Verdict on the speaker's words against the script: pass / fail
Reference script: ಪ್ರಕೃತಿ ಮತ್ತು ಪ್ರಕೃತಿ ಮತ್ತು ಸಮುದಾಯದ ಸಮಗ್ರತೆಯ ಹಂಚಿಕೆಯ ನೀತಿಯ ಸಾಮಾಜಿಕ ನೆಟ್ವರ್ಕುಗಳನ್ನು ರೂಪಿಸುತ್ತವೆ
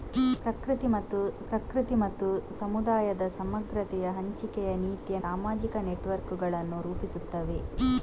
pass